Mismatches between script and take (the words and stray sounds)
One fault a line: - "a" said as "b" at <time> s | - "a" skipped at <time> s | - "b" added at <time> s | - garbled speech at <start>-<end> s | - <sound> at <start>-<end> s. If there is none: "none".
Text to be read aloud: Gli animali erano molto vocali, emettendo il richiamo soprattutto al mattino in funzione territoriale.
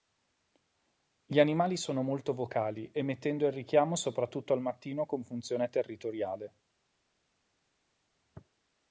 - "erano" said as "sono" at 1.8 s
- "in" said as "con" at 5.0 s